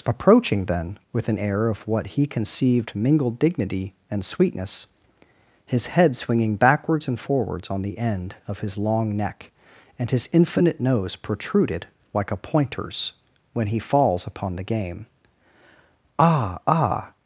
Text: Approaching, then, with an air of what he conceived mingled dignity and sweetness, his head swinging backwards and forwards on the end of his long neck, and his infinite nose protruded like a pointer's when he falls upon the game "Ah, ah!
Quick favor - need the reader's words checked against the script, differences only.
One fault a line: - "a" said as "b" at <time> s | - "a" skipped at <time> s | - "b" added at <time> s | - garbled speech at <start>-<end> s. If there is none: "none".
none